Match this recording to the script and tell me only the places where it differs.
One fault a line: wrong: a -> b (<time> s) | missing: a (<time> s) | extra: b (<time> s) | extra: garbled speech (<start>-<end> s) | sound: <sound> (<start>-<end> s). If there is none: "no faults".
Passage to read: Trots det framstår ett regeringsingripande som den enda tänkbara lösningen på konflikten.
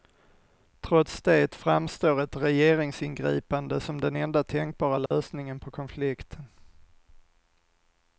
sound: dropout (5.1-5.1 s)